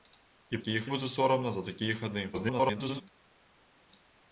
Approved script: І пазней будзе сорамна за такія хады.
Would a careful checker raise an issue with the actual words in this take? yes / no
yes